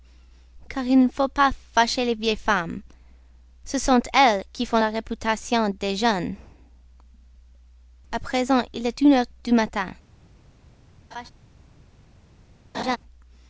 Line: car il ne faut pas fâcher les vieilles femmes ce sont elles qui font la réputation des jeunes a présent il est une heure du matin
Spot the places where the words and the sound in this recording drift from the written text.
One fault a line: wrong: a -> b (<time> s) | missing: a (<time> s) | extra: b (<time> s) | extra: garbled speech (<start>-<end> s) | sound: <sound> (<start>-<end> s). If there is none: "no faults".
sound: laugh (11.1-11.3 s)
sound: laugh (12.7-13.0 s)